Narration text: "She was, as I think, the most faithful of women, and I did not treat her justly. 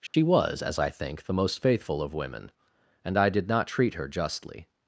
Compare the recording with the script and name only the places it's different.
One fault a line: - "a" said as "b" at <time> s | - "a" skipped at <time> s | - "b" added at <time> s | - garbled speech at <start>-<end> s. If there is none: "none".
none